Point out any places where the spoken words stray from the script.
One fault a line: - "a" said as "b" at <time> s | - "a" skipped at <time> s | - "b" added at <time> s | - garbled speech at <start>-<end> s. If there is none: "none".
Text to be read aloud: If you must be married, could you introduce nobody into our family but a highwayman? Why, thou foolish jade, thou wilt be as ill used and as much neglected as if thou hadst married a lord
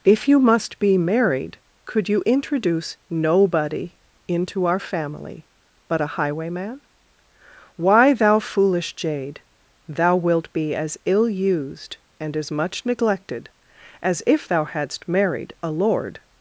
none